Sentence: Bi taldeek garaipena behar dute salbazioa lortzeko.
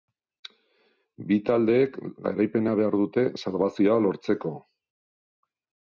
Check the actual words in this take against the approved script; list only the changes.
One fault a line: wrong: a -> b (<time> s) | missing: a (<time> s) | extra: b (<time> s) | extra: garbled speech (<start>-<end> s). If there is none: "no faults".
no faults